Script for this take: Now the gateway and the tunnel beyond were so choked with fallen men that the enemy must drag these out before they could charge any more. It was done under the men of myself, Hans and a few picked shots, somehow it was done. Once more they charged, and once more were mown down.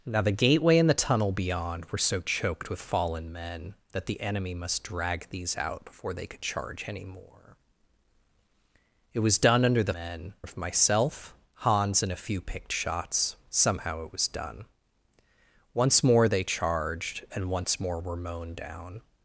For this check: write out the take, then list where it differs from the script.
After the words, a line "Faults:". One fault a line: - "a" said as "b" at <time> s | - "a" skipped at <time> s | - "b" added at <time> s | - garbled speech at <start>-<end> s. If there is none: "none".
Now the gateway and the tunnel beyond were so choked with fallen men that the enemy must drag these out before they could charge any more. It was done under the men of myself, Hans and a few picked shots, somehow it was done. Once more they charged, and once more were mown down.
Faults:
none